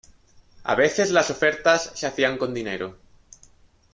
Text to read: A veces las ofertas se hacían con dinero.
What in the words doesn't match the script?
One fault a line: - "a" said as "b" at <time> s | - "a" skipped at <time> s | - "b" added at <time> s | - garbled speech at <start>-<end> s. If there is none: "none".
none